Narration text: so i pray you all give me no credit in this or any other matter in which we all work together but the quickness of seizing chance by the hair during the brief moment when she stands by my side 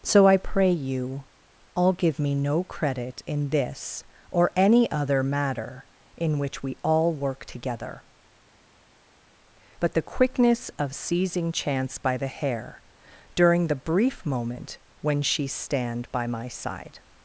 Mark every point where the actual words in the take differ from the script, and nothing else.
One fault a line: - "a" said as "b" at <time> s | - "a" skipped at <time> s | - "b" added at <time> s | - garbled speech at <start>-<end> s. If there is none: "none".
- "stands" said as "stand" at 15.5 s